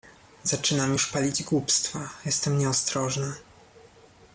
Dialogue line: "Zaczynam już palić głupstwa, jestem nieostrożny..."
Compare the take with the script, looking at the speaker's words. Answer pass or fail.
pass